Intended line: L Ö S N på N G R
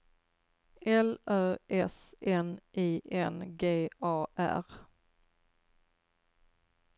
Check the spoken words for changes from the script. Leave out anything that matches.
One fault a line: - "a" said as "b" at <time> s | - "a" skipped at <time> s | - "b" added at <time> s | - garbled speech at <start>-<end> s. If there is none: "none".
- "på" said as "I" at 2.7 s
- "A" added at 4.0 s